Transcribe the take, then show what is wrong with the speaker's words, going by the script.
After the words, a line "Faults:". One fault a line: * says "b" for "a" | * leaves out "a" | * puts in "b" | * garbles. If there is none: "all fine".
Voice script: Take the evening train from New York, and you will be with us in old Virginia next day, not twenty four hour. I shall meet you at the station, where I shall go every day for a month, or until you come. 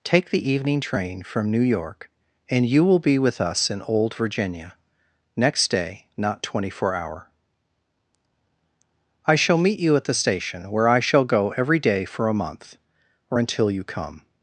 Take the evening train from New York, and you will be with us in old Virginia next day, not twenty four hour. I shall meet you at the station, where I shall go every day for a month, or until you come.
Faults:
all fine